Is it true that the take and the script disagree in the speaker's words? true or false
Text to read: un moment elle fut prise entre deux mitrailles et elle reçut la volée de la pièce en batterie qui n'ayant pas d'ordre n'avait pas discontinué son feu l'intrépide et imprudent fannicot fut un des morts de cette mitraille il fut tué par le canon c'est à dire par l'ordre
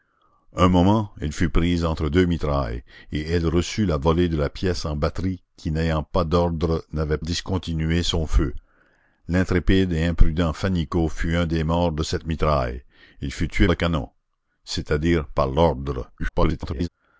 true